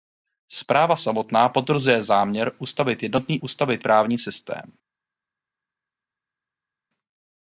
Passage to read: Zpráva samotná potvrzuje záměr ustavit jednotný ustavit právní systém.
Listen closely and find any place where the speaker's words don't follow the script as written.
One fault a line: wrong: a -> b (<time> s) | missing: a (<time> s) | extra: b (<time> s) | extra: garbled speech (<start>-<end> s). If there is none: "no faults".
no faults